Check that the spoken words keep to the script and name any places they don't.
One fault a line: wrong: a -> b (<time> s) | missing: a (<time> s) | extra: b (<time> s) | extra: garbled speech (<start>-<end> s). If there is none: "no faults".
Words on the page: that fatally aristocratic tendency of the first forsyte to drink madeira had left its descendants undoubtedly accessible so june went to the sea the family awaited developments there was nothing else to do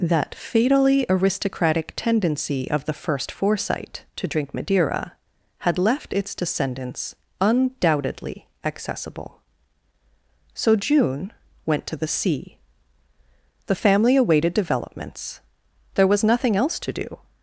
no faults